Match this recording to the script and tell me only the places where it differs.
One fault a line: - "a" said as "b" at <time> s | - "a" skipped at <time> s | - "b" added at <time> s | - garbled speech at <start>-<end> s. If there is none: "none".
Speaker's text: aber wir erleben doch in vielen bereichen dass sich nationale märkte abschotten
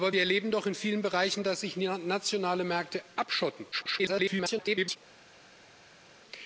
- garbled speech at 3.7-5.0 s